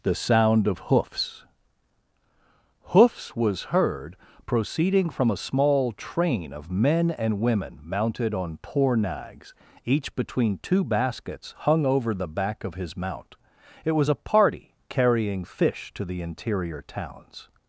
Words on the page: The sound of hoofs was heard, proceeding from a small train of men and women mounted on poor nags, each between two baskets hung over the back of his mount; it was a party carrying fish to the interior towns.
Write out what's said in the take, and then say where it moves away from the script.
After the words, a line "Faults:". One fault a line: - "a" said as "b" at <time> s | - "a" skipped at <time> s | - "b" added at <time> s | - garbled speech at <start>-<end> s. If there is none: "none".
The sound of hoofs hoofs was heard, proceeding from a small train of men and women mounted on poor nags, each between two baskets hung over the back of his mount; it was a party carrying fish to the interior towns.
Faults:
- "hoofs" added at 2.9 s